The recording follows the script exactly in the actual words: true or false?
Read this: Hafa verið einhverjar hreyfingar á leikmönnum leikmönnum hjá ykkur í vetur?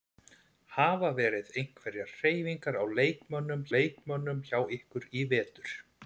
true